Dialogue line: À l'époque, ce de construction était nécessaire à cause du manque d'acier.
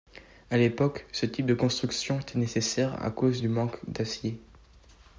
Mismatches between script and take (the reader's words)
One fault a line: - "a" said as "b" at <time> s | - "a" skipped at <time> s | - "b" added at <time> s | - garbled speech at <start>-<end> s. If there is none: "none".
- "type" added at 1.3 s